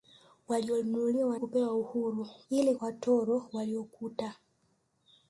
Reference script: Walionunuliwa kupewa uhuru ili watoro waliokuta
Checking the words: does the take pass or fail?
pass